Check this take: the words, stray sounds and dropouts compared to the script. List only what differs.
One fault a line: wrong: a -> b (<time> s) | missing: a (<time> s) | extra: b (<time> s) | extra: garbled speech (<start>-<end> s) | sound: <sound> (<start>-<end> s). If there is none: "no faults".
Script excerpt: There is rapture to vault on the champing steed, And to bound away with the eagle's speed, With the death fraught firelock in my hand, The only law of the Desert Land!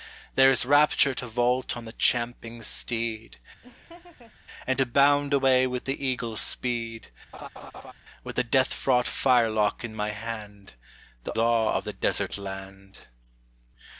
sound: laugh (3.6-4.3 s)
sound: laugh (7.3-7.9 s)
missing: only (11.3 s)